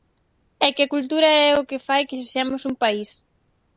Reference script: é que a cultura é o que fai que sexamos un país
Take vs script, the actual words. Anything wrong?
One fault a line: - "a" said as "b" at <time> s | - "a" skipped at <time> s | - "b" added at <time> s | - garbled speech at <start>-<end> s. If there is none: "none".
none